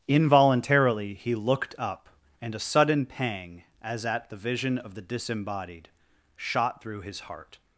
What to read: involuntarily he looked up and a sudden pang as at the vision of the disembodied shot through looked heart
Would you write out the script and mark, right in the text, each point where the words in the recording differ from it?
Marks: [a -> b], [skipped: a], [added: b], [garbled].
involuntarily he looked up and a sudden pang as at the vision of the disembodied shot through [looked -> his] heart